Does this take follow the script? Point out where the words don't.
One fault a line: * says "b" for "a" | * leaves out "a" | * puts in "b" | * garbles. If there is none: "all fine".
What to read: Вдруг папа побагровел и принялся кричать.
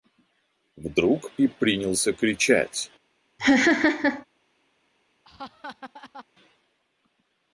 * leaves out "папа побагровел"